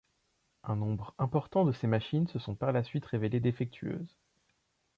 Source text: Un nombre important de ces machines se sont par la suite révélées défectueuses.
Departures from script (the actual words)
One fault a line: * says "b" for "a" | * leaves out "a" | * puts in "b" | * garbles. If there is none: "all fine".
all fine